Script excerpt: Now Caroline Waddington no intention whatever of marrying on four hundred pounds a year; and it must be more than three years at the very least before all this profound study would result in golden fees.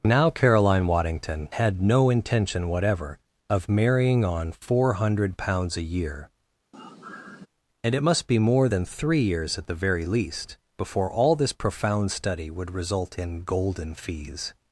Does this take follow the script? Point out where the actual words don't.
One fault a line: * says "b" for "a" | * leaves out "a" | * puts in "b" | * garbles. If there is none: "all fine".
* puts in "had"